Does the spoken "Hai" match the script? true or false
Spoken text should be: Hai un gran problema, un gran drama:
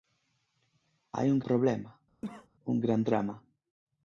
true